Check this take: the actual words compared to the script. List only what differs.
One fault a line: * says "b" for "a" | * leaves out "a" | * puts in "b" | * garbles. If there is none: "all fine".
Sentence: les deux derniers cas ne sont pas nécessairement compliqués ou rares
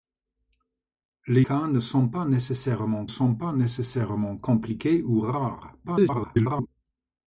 * says "cas ne sont pas nécessairement" for "deux derniers cas ne"
* garbles